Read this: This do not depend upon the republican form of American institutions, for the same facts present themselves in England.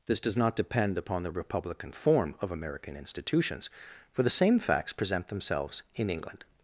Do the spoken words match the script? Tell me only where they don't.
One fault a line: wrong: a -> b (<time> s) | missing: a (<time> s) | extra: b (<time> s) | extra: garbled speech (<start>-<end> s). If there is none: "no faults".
wrong: do -> does (0.2 s)